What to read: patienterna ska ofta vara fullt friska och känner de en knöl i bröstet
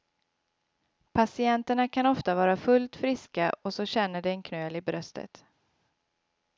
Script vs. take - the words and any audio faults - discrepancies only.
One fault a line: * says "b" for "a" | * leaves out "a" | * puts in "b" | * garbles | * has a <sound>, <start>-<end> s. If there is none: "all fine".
* says "kan" for "ska"
* puts in "så"